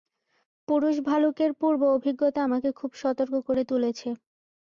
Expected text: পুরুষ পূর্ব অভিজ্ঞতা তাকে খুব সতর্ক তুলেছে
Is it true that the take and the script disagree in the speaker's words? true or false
true